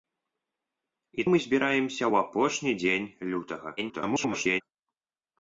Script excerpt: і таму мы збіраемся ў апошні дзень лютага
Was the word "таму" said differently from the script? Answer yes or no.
yes